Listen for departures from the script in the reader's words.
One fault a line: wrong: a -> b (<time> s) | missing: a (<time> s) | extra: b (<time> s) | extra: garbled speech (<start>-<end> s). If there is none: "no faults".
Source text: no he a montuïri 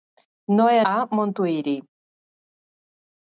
no faults